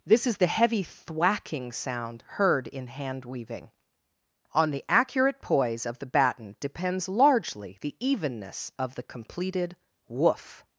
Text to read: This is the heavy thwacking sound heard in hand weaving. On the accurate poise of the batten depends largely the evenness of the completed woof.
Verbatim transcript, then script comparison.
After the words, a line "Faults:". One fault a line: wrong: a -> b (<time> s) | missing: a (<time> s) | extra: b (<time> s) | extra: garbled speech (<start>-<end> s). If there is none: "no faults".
This is the heavy thwacking sound heard in hand weaving. On the accurate poise of the batten depends largely the evenness of the completed woof.
Faults:
no faults